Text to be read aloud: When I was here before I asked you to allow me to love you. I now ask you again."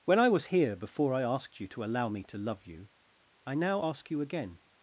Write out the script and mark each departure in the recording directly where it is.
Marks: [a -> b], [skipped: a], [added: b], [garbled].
When I was here before I asked you to allow me to love you. I now ask you again."